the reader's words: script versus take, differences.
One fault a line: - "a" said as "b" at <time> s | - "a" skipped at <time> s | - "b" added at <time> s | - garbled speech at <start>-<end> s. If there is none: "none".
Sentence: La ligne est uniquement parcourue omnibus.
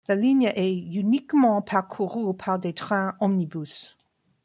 - "par des trains" added at 2.4 s